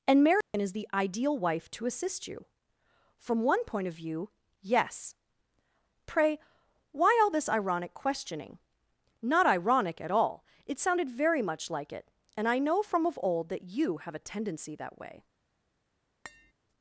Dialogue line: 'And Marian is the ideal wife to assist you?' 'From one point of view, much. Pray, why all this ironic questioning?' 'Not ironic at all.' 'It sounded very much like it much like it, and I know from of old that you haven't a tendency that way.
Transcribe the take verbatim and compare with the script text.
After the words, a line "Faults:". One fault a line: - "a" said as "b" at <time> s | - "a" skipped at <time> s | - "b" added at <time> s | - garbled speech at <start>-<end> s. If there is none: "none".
'And Marian is the ideal wife to assist you?' 'From one point of view, yes. Pray, why all this ironic questioning?' 'Not ironic at all.' 'It sounded very much like it, and I know from of old that you have a tendency that way.
Faults:
- "much" said as "yes" at 4.6 s
- "much like it" skipped at 12.1 s
- "haven't" said as "have" at 14.0 s